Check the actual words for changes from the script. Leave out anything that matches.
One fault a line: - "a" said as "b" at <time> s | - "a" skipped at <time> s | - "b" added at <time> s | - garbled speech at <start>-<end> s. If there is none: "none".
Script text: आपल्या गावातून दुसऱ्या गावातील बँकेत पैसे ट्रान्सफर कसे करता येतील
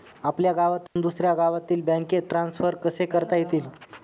- "पैसे" skipped at 2.2 s